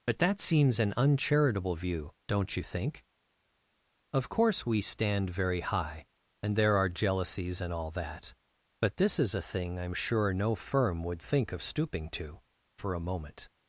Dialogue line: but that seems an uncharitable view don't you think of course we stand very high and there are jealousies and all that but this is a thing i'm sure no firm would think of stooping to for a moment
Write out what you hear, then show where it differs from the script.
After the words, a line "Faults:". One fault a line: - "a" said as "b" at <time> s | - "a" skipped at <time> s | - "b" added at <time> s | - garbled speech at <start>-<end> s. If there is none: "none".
but that seems an uncharitable view don't you think of course we stand very high and there are jealousies and all that but this is a thing i'm sure no firm would think of stooping to for a moment
Faults:
none